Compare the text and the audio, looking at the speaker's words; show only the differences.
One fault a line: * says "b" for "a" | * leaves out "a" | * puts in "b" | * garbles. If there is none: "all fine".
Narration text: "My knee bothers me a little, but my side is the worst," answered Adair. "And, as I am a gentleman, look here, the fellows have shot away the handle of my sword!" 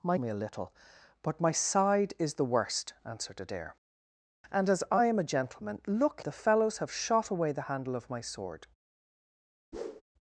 * leaves out "knee bothers"
* leaves out "here"